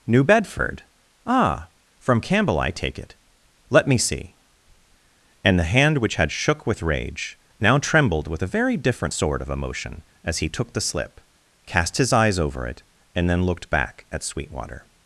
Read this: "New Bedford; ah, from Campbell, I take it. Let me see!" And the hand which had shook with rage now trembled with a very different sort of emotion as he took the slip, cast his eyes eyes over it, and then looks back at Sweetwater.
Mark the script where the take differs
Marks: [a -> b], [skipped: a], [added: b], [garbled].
"New Bedford; ah, from Campbell, I take it. Let me see!" And the hand which had shook with rage now trembled with a very different sort of emotion as he took the slip, cast his eyes [skipped: eyes] over it, and then [looks -> looked] back at Sweetwater.